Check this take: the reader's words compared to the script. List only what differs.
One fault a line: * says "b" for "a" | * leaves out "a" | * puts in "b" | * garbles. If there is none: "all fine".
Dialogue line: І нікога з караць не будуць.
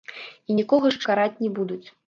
all fine